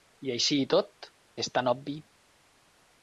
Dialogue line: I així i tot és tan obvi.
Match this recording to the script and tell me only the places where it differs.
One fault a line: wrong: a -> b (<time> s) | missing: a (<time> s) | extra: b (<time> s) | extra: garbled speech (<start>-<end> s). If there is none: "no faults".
no faults